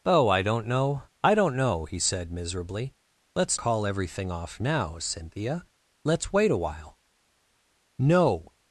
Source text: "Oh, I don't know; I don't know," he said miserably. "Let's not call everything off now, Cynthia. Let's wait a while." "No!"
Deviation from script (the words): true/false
true